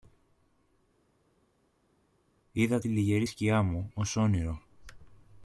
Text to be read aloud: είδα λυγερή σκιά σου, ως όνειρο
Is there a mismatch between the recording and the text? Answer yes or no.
yes